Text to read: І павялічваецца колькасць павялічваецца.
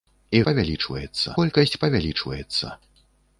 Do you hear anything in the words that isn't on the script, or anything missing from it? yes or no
no